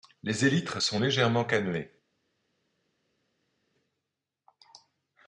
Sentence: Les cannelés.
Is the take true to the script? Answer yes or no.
no